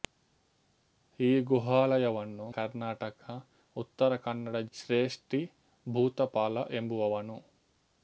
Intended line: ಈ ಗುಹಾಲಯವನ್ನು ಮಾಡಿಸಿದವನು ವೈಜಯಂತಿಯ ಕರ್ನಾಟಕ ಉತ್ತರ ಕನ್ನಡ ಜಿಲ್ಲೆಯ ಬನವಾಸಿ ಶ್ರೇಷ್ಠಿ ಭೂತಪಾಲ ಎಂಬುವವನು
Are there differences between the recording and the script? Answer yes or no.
yes